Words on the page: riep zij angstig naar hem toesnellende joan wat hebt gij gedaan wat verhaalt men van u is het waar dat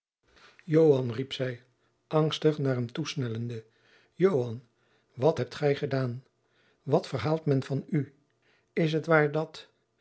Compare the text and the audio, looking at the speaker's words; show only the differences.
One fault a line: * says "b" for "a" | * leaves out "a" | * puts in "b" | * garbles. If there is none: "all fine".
all fine